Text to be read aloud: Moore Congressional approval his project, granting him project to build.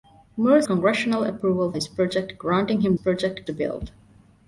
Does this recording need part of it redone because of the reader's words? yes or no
no